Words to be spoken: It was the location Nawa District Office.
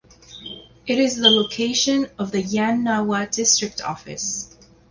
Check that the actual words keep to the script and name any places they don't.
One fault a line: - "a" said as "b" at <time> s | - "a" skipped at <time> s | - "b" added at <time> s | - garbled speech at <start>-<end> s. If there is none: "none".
- "was" said as "is" at 1.0 s
- "of the Yan" added at 2.2 s